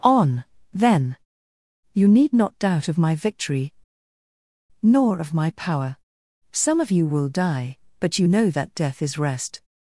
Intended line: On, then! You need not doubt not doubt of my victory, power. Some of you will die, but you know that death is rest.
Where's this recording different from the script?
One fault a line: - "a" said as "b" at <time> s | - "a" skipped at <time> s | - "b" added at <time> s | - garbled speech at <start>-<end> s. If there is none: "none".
- "not doubt" said as "of my victory nor" at 2.9 s
- "victory" skipped at 5.5 s